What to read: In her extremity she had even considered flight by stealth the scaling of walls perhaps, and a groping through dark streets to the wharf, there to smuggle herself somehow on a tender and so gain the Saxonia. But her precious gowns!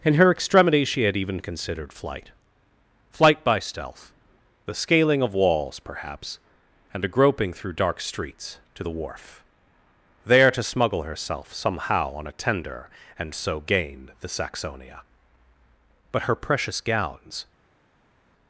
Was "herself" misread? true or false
false